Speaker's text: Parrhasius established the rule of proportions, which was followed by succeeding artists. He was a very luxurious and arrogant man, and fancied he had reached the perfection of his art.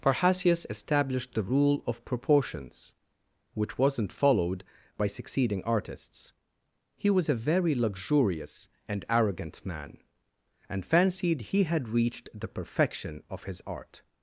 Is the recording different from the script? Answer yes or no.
yes